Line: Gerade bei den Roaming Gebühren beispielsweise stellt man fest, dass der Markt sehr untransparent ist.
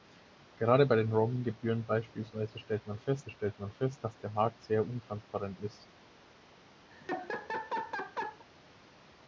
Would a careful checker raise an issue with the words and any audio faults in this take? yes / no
yes